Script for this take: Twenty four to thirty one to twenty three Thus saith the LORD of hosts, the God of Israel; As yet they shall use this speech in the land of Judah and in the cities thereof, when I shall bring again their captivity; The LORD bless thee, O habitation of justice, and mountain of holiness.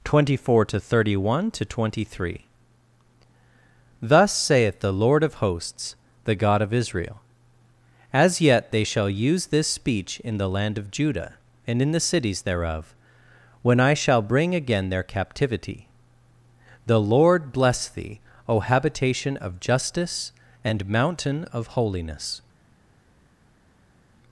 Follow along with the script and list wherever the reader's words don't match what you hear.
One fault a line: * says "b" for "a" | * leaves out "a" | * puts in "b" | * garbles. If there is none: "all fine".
all fine